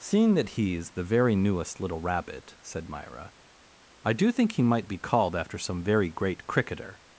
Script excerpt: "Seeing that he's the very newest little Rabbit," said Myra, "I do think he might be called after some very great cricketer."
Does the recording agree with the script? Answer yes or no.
yes